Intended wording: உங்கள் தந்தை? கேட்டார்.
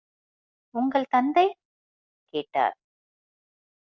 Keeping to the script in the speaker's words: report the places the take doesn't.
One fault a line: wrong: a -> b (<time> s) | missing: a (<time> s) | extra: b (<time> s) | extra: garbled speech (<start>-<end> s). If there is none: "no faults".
no faults